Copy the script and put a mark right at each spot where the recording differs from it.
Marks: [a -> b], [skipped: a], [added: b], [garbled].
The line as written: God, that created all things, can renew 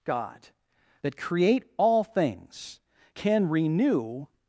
God, that [created -> create] all things, can renew